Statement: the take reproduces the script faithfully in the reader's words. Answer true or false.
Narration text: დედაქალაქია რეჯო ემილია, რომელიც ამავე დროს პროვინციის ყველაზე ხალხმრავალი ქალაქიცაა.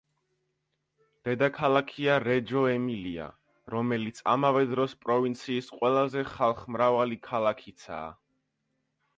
true